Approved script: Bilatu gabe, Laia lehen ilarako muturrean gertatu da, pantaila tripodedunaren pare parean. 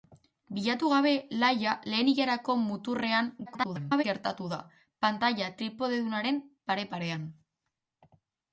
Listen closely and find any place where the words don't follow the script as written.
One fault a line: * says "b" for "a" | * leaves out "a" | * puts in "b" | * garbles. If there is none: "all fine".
* garbles